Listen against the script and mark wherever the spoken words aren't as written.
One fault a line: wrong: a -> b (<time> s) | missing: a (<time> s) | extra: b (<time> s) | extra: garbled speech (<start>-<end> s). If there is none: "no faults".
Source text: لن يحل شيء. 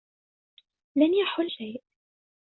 no faults